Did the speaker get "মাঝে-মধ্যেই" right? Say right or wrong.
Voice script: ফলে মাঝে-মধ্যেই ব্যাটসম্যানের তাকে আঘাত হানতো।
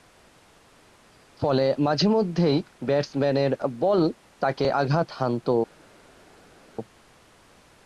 right